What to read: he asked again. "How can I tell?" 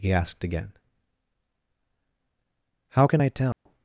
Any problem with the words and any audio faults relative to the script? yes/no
yes